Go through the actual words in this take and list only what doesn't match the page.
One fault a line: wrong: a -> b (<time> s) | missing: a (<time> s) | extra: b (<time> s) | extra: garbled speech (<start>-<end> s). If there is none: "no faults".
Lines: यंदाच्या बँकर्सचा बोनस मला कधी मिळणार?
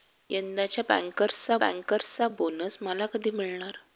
extra: बँकर्सचा (1.6 s)